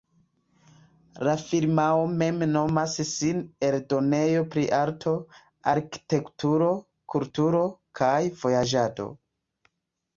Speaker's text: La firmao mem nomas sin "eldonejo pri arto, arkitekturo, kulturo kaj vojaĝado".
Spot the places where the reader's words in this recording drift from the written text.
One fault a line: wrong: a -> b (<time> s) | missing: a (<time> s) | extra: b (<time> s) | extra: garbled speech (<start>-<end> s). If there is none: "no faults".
no faults